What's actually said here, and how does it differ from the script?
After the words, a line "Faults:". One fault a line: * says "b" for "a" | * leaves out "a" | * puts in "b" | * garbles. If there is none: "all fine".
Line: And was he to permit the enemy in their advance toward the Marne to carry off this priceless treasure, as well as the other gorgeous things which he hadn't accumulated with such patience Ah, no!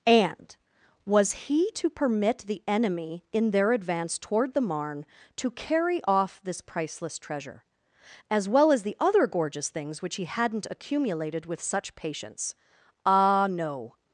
And was he to permit the enemy in their advance toward the Marne to carry off this priceless treasure, as well as the other gorgeous things which he hadn't accumulated with such patience Ah, no!
Faults:
all fine